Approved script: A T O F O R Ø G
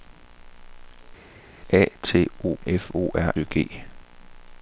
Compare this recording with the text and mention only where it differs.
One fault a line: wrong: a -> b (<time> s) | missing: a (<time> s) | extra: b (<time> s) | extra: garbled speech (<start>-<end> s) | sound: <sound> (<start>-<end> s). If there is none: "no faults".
no faults